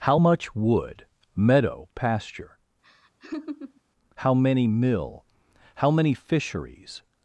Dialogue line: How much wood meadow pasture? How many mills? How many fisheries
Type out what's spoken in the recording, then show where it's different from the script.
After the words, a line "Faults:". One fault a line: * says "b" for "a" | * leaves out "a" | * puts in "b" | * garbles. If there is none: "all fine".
How much wood meadow pasture? How many mill? How many fisheries
Faults:
* says "mill" for "mills"